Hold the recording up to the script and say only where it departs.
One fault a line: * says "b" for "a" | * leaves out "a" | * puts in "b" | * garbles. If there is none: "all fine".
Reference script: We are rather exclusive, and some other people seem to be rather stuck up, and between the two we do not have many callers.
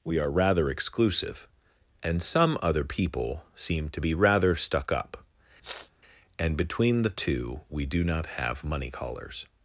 * says "money" for "many"